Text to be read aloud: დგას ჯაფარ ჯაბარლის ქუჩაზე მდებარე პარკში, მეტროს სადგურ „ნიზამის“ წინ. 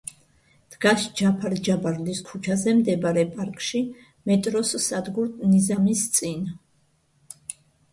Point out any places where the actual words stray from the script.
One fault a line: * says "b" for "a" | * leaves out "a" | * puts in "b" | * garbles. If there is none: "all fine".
all fine